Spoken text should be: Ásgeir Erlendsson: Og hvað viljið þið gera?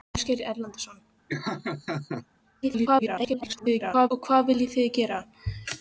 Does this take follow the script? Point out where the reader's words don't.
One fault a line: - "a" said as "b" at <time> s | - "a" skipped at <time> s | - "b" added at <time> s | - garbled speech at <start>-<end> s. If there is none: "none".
- garbled speech at 2.6-4.1 s